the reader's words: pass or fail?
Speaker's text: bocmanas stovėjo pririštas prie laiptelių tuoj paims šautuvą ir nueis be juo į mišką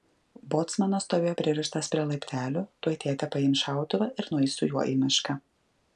fail